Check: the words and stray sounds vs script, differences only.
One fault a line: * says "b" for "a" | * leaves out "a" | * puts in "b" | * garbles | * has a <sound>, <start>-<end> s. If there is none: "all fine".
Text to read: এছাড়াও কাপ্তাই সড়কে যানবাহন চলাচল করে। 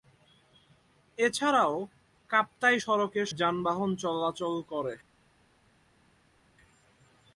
all fine